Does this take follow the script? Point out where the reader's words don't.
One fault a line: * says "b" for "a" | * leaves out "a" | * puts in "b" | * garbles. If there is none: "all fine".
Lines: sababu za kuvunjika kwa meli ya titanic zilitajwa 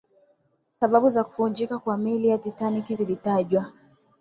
all fine